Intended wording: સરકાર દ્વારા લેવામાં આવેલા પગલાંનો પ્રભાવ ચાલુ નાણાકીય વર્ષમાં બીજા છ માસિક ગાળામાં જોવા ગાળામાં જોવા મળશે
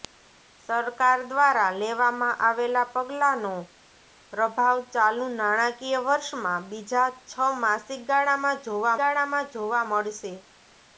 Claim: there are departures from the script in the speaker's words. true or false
false